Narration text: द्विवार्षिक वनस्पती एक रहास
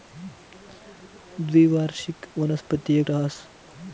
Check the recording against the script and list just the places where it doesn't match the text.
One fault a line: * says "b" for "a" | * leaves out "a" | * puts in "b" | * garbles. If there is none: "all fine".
all fine